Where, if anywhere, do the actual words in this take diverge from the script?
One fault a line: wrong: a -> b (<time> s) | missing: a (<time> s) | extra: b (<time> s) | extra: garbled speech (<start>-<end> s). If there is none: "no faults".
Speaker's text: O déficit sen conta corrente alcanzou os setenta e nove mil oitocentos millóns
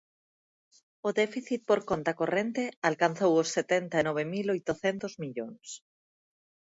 wrong: sen -> por (1.7 s)